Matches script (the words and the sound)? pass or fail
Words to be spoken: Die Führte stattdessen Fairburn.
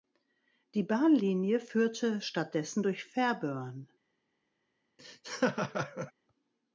fail